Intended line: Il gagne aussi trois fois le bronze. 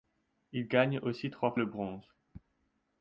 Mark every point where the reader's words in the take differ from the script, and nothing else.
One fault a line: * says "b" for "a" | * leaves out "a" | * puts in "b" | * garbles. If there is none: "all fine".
* leaves out "fois"